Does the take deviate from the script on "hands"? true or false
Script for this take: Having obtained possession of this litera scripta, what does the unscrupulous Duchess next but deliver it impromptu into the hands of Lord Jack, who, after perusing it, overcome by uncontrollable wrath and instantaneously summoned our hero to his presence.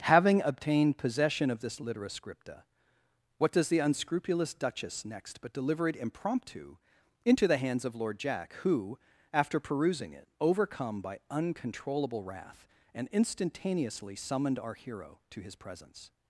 false